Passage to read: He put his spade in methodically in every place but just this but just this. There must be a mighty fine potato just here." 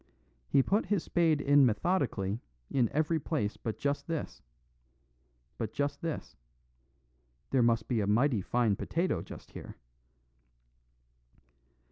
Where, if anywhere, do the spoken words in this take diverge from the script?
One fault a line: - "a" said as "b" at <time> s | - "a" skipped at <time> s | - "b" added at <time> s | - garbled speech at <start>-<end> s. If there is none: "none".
none